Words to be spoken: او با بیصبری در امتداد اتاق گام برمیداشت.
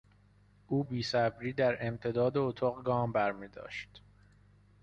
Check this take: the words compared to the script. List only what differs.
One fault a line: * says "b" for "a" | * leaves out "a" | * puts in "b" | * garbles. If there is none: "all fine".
* leaves out "با"